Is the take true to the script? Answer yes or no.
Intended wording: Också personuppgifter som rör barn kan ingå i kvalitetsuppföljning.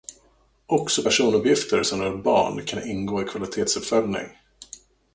yes